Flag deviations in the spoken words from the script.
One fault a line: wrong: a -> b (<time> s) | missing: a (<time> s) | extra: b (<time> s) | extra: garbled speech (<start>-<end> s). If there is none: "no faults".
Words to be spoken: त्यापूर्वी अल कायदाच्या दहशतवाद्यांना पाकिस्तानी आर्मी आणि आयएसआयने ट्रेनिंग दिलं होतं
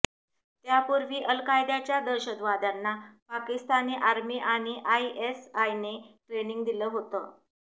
no faults